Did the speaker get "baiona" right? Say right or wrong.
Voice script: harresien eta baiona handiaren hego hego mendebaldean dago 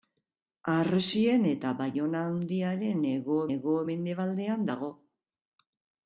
right